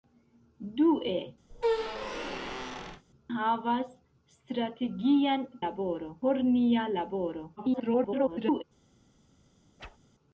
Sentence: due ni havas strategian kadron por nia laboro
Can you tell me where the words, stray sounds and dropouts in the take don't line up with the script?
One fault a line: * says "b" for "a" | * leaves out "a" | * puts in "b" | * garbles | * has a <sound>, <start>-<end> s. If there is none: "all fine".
* leaves out "ni"
* has a squeak, 1.5-3.0 s
* says "laboro" for "kadron"
* garbles
* has a whoosh, 9.8-10.0 s